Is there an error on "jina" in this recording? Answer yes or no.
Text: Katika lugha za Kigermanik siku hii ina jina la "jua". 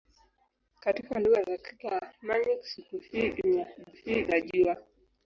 yes